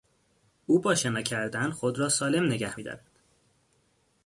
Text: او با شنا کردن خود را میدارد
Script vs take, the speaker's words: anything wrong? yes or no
yes